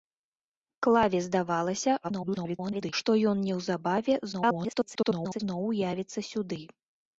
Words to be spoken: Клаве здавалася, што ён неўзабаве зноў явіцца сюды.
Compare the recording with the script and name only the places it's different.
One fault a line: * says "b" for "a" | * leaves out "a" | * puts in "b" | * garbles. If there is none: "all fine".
* garbles
* garbles